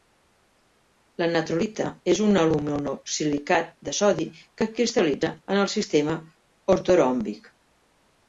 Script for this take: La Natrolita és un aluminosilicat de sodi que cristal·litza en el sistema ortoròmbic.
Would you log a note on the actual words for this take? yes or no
no